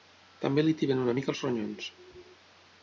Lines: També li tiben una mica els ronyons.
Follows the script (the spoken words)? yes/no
yes